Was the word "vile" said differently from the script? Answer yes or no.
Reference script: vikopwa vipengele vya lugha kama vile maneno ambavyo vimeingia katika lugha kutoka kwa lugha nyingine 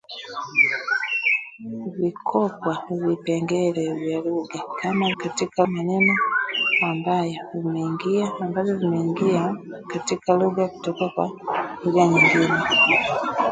yes